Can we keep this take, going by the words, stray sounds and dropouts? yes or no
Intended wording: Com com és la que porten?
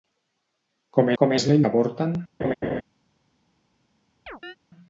no